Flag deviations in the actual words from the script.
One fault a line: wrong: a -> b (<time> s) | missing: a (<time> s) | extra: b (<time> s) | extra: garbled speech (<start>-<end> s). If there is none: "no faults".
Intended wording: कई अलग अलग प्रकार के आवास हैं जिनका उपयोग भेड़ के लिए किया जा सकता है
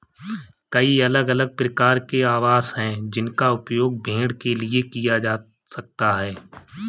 no faults